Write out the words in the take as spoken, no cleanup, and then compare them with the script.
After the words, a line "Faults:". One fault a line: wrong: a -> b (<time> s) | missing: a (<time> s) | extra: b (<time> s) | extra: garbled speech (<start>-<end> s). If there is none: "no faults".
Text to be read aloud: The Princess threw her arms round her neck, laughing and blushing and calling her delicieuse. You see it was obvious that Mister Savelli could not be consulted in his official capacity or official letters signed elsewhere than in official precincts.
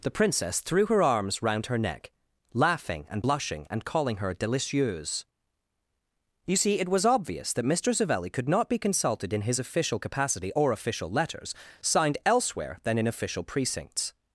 The Princess threw her arms round her neck, laughing and blushing and calling her delicieuse. You see it was obvious that Mister Savelli could not be consulted in his official capacity or official letters signed elsewhere than in official precincts.
Faults:
no faults